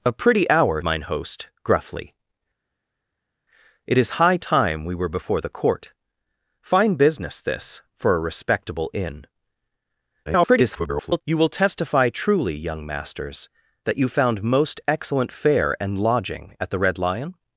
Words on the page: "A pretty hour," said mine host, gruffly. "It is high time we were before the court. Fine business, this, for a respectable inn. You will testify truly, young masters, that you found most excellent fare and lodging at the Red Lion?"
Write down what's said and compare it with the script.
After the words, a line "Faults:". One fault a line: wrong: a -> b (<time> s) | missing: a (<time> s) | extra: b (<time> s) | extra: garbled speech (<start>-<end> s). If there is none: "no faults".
"A pretty hour," mine host, gruffly. "It is high time we were before the court. Fine business, this, for a respectable inn. [garbled] You will testify truly, young masters, that you found most excellent fare and lodging at the Red Lion?"
Faults:
missing: said (0.8 s)
extra: garbled speech (10.3-11.2 s)